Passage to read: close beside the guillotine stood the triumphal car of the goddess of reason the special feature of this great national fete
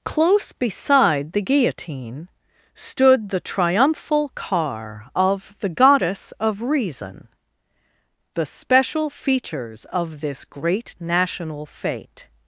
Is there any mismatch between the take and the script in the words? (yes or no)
yes